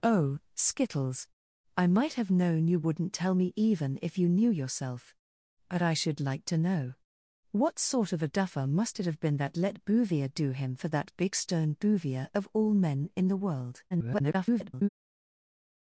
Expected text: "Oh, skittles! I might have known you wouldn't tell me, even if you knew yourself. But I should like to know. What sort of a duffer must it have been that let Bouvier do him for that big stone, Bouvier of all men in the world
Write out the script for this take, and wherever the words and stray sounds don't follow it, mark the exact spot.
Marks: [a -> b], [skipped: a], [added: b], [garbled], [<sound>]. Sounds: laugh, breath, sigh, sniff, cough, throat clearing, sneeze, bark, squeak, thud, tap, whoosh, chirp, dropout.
"Oh, skittles! I might have known you wouldn't tell me, even if you knew yourself. But I should like to know. What sort of a duffer must it have been that let Bouvier do him for that big stone, Bouvier of all men in the world [garbled]